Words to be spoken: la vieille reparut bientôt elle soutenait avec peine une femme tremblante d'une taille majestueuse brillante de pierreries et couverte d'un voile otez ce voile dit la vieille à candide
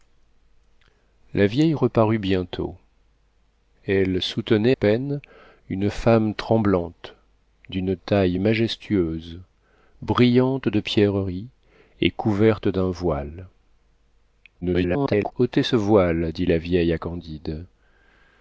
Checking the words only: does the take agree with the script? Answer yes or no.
no